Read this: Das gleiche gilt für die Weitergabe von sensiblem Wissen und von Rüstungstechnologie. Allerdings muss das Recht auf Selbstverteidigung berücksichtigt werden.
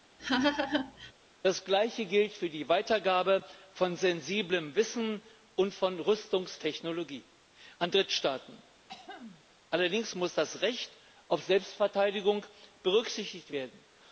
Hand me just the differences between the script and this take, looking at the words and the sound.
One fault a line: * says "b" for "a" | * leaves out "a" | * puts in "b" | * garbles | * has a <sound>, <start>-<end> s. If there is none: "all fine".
* has a laugh, 0.2-1.1 s
* puts in "an Drittstaaten"
* has a throat clearing, 8.9-9.4 s